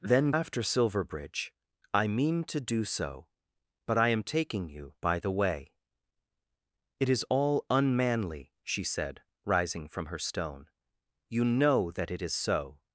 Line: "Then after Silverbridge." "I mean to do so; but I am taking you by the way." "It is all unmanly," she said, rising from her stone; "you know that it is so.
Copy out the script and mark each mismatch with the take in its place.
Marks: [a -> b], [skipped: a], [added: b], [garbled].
"Then after Silverbridge." "I mean to do so; but I am taking you by the way." "It is all unmanly," she said, rising from her stone; "you know that it is so.